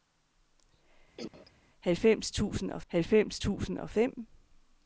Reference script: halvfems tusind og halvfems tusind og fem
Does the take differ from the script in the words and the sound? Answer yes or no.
yes